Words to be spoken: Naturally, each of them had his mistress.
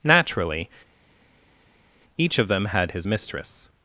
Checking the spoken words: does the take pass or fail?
pass